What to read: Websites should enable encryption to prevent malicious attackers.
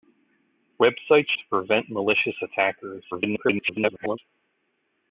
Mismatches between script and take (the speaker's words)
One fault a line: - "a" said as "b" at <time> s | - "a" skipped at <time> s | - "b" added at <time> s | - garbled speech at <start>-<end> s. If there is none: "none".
- "should enable encryption" skipped at 1.3 s
- garbled speech at 3.1-4.2 s